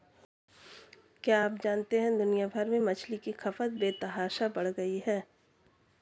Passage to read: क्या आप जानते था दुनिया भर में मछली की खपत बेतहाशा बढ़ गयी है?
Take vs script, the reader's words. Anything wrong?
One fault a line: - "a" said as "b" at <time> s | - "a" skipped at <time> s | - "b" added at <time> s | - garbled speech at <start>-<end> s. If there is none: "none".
- "था" said as "है" at 2.0 s